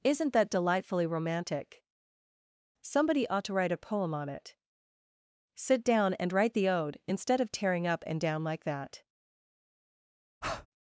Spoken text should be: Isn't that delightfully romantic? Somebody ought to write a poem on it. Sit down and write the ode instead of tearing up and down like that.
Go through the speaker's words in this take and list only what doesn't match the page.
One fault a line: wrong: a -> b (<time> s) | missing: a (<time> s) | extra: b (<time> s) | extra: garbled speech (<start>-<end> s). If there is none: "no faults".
no faults